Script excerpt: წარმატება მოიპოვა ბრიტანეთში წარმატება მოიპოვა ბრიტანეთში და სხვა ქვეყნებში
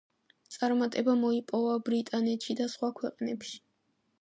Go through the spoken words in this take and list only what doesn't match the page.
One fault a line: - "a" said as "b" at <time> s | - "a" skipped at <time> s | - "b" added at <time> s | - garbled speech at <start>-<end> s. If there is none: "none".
- "წარმატება მოიპოვა ბრიტანეთში" skipped at 2.6 s